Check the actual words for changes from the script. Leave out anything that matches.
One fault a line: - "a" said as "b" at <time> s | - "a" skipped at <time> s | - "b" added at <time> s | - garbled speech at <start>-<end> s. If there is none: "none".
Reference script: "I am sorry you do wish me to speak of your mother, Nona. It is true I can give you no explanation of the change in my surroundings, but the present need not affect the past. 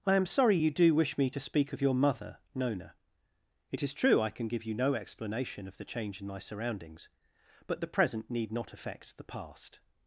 none